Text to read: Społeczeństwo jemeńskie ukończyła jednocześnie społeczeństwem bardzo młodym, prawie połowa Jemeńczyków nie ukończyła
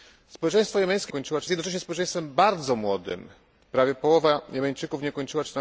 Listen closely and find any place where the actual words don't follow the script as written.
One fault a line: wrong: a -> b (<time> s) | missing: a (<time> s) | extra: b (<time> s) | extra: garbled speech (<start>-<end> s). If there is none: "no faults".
no faults